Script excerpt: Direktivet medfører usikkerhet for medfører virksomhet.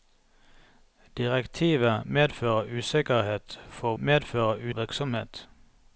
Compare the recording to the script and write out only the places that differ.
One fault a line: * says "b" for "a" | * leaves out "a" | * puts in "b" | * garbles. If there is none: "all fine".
all fine